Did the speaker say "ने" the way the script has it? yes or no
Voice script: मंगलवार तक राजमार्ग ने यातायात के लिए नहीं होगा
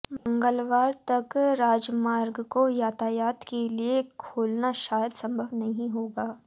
no